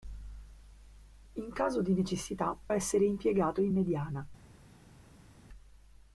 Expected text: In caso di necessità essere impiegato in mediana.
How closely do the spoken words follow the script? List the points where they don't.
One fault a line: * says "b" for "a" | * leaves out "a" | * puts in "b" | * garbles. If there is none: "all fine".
all fine